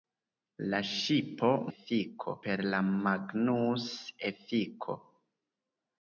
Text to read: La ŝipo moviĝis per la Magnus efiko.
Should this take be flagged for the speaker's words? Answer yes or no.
yes